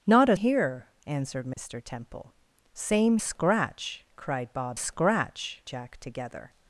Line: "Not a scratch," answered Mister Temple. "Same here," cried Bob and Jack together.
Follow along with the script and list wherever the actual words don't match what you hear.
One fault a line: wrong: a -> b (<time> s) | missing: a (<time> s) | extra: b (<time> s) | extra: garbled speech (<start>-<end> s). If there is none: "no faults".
wrong: scratch -> here (0.3 s)
wrong: here -> scratch (3.2 s)
wrong: and -> scratch (4.8 s)